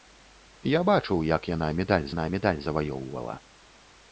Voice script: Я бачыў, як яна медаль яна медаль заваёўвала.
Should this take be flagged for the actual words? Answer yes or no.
no